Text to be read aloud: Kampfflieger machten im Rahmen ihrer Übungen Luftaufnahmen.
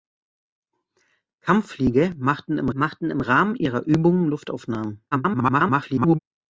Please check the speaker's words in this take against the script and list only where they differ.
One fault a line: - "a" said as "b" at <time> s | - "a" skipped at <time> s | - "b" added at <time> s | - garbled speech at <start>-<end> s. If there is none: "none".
- "machten im" added at 2.7 s
- garbled speech at 5.1-6.2 s